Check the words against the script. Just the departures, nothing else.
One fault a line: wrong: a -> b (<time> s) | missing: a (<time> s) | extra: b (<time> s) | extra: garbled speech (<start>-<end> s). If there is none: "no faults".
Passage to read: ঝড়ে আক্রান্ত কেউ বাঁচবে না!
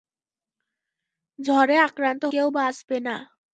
no faults